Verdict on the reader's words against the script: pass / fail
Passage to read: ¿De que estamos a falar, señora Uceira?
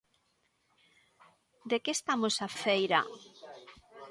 fail